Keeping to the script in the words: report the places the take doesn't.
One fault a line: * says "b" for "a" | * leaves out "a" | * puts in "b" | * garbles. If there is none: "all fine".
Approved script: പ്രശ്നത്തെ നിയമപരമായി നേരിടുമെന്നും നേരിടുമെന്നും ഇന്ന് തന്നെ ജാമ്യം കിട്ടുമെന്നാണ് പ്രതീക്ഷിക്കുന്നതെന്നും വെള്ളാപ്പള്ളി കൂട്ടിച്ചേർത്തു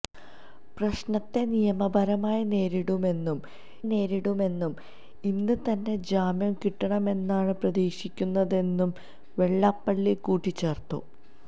all fine